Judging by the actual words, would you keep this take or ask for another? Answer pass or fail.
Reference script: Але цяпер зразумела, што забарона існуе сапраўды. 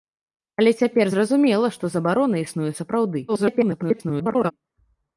fail